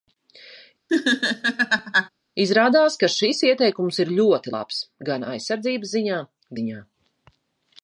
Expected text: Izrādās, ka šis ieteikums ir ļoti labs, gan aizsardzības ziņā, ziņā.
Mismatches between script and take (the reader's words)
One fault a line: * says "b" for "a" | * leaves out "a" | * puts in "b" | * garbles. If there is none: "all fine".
all fine